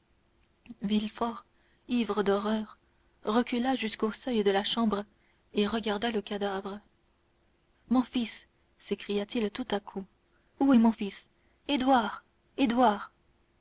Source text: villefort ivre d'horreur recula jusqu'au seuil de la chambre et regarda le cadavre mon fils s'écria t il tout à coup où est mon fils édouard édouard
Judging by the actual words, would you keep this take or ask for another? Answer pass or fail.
pass